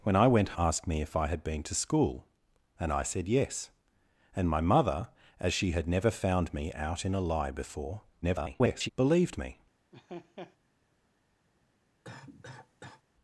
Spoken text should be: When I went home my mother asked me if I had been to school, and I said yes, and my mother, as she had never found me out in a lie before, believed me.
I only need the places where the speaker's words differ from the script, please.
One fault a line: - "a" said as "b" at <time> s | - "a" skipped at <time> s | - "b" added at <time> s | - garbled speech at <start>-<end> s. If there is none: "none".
- "home my mother" skipped at 0.6 s
- garbled speech at 8.2-8.9 s